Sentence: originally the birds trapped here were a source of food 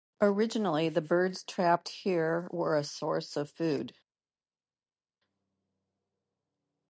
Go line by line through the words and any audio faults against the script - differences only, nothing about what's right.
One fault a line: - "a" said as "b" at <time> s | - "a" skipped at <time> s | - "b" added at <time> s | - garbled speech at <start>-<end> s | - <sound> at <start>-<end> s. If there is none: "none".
none